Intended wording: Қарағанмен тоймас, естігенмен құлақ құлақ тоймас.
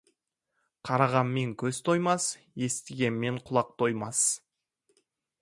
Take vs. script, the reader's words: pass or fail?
fail